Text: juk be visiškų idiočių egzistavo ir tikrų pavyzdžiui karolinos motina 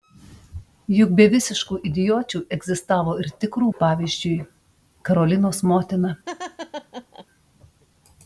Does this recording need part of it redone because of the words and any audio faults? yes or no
yes